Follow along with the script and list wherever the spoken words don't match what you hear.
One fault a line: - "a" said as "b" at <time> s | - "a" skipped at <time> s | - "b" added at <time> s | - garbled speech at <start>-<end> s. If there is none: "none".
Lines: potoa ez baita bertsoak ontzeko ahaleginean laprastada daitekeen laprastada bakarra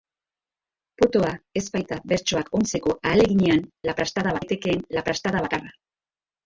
none